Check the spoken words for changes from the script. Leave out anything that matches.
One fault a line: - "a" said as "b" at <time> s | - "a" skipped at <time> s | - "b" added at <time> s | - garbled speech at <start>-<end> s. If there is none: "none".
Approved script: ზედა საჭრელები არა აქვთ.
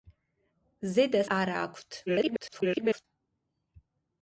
- "საჭრელები" skipped at 1.2 s
- garbled speech at 2.1-3.1 s